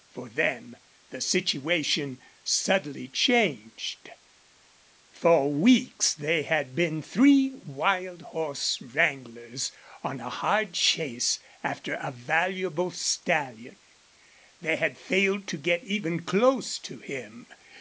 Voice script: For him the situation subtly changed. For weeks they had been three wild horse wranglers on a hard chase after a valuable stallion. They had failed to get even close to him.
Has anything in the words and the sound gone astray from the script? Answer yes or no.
yes